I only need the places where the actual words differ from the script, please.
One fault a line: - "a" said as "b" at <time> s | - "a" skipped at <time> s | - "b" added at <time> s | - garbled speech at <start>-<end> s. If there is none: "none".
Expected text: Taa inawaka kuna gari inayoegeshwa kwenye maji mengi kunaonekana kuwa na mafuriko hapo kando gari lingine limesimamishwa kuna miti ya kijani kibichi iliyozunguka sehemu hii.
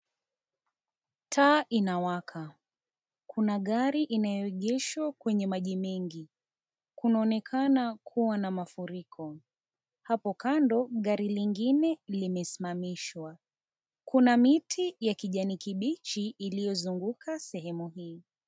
none